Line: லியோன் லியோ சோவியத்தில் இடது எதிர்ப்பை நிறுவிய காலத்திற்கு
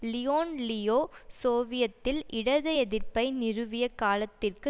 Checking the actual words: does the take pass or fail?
pass